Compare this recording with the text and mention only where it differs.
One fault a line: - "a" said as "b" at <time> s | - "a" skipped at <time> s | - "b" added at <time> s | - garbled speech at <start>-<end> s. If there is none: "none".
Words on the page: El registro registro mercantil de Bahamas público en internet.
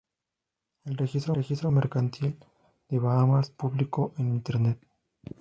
none